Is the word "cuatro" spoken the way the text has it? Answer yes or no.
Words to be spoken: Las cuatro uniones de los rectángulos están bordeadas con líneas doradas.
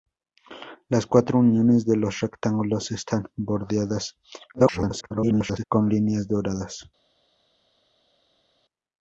yes